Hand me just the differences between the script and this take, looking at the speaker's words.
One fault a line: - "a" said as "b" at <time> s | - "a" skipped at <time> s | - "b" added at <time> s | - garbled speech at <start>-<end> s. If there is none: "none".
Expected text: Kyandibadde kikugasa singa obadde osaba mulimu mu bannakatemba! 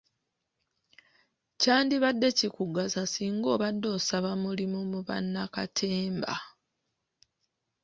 none